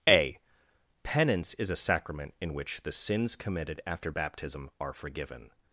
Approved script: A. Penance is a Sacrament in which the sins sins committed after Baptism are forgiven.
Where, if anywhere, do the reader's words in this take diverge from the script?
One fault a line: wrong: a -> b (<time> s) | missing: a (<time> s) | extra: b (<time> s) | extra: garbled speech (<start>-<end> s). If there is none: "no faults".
missing: sins (3.4 s)